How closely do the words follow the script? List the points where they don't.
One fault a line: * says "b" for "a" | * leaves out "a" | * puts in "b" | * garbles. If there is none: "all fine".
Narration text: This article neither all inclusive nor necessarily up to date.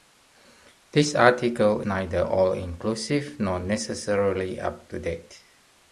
all fine